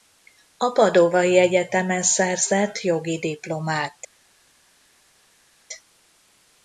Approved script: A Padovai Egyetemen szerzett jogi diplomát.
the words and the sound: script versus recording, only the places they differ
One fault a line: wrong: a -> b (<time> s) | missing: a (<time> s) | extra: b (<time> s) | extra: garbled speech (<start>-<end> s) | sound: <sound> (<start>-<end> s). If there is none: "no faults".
no faults